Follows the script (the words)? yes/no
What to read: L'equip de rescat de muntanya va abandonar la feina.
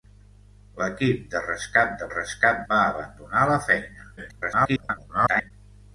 no